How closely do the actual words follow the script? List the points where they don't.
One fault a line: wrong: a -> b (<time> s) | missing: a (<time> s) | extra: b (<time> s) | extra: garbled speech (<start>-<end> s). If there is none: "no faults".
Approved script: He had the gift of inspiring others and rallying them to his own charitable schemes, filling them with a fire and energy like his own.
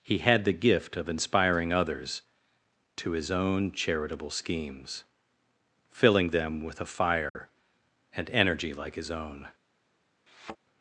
missing: and rallying them (2.2 s)